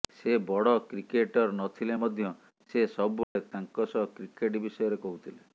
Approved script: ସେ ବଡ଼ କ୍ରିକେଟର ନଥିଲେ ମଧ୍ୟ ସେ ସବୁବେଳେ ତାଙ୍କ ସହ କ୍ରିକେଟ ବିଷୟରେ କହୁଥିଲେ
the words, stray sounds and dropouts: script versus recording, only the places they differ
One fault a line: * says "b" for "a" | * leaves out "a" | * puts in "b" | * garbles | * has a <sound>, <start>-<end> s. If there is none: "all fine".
* has a dropout, 3.2-3.4 s